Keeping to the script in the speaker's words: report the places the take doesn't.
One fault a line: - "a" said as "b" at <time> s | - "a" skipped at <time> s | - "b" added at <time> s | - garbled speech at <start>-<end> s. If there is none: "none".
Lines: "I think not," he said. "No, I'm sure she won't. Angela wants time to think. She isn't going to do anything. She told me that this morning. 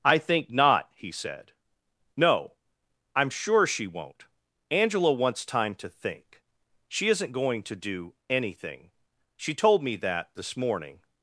none